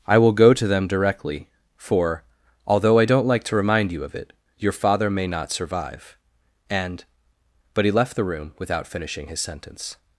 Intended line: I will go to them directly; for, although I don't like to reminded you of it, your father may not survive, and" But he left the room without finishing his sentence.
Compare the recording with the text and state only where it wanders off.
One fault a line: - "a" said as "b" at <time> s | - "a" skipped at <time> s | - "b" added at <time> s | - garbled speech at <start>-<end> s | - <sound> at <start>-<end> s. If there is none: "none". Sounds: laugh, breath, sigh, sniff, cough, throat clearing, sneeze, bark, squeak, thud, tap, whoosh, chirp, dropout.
- "reminded" said as "remind" at 3.6 s